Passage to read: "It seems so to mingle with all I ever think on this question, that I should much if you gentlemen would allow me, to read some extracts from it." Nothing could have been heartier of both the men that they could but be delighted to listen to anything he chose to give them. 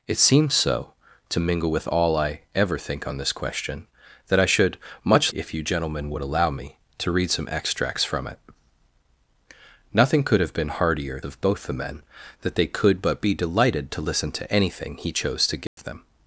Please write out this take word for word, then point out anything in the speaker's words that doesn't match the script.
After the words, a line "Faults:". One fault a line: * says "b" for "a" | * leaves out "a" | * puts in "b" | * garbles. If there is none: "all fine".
"It seems so to mingle with all I ever think on this question, that I should much if you gentlemen would allow me, to read some extracts from it." Nothing could have been heartier of both the men that they could but be delighted to listen to anything he chose to give them.
Faults:
all fine